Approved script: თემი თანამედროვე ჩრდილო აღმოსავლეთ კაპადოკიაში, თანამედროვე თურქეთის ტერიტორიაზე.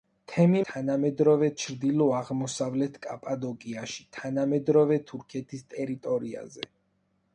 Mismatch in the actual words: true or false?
false